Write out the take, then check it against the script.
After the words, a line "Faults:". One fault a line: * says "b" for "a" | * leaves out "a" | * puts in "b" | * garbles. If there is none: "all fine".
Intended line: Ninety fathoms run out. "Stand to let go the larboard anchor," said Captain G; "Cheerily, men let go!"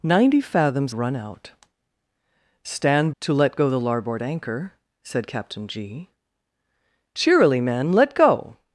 Ninety fathoms run out. "Stand to let go the larboard anchor," said Captain G; "Cheerily, men let go!"
Faults:
all fine